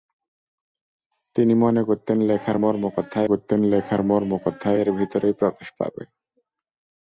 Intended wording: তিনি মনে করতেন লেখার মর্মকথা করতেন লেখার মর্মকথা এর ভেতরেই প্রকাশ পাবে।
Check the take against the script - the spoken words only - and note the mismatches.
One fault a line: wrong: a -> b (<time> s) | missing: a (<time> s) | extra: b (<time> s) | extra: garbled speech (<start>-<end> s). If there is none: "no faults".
no faults